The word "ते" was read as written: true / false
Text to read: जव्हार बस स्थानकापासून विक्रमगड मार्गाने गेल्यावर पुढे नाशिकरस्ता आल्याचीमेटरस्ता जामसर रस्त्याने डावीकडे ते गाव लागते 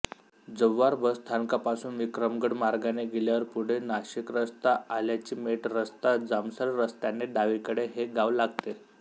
false